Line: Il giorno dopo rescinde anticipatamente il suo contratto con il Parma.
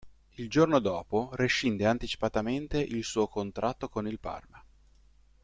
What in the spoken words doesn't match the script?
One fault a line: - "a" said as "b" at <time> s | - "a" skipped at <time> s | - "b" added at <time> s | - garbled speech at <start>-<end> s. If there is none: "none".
none